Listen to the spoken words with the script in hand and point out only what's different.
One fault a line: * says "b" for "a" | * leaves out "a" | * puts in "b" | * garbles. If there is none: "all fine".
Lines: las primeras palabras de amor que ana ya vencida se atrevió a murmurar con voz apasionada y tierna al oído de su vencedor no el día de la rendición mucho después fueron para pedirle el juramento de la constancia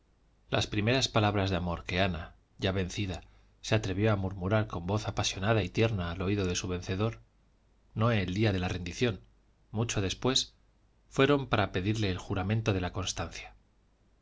all fine